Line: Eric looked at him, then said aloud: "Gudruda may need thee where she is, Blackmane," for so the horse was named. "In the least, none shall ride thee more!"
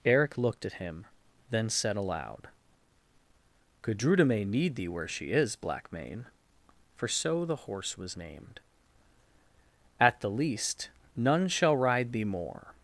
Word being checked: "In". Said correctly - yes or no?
no